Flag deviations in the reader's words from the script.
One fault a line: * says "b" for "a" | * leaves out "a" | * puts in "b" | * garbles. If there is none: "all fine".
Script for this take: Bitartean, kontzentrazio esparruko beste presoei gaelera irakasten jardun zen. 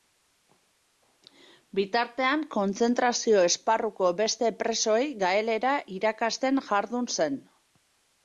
all fine